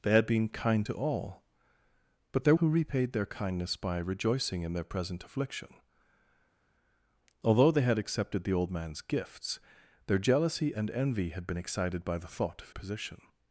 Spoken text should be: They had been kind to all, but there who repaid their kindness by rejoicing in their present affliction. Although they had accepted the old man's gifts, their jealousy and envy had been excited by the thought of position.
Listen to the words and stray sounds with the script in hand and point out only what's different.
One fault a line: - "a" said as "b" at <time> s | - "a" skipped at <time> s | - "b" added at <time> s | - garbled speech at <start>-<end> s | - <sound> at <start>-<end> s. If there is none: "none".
none